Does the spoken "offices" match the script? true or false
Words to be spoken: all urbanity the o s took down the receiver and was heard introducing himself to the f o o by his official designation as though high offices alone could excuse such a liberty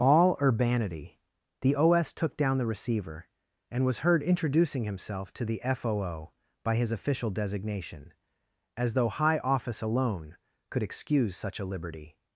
false